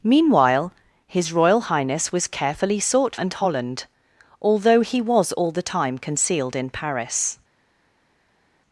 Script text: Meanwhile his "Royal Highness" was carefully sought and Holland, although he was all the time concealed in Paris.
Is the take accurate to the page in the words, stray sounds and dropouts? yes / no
yes